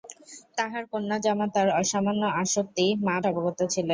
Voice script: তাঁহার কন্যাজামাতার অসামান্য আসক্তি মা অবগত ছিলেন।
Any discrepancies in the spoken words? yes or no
no